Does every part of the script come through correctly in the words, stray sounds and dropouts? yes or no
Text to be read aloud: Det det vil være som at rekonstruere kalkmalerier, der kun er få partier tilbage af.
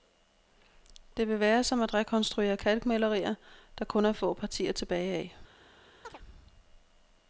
no